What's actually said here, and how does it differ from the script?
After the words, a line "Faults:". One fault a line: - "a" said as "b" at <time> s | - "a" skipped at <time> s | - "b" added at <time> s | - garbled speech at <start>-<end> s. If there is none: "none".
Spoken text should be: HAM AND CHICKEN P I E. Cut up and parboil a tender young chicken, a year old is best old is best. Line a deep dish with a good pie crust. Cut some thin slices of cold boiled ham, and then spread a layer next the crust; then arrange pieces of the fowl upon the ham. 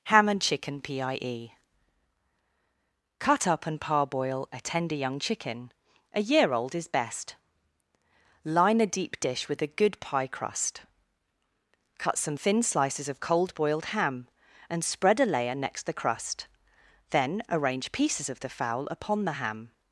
HAM AND CHICKEN P I E. Cut up and parboil a tender young chicken, a year old is best. Line a deep dish with a good pie crust. Cut some thin slices of cold boiled ham, and spread a layer next the crust; then arrange pieces of the fowl upon the ham.
Faults:
- "old is best" skipped at 7.3 s
- "then" skipped at 14.8 s